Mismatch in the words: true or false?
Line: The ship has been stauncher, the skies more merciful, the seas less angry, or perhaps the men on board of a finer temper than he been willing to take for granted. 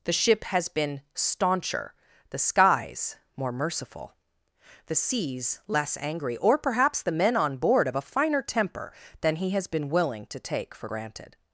true